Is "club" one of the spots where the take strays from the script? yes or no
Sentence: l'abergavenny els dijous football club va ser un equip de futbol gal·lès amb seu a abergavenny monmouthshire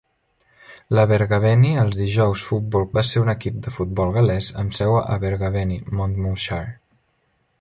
yes